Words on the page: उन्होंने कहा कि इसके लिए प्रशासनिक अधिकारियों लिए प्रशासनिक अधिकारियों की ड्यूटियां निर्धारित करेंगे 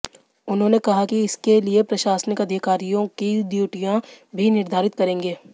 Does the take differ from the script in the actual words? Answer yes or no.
yes